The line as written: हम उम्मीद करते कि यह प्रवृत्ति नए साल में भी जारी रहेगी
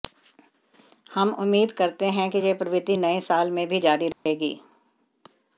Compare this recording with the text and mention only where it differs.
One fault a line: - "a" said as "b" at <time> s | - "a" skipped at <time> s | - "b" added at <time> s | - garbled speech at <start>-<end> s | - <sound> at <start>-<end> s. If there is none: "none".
- "हैं" added at 2.1 s
- dropout at 4.1-4.3 s